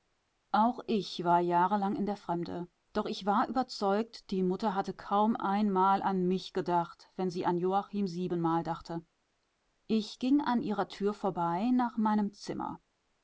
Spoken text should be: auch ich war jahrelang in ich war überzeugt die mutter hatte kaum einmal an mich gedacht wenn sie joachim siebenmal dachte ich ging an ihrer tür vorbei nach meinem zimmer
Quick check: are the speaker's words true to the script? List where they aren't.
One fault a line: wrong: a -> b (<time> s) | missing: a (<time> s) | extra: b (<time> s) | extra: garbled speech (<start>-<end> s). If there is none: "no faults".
extra: der fremde doch (2.1 s)
extra: an (7.5 s)